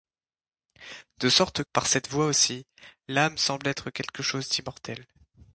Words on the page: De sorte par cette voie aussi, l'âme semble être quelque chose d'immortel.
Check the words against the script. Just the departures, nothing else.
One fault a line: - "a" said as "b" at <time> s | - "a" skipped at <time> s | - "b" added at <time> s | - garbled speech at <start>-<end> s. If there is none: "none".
none